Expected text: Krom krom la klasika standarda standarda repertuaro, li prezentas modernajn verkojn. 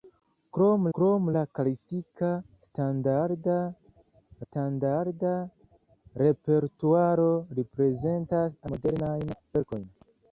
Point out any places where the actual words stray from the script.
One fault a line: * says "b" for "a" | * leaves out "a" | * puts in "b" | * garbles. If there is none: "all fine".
all fine